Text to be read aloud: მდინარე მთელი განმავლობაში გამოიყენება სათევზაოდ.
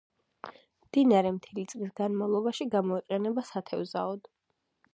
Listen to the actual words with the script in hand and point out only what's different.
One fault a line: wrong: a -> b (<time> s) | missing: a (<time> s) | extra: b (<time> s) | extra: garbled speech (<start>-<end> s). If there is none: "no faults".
extra: წლის (1.7 s)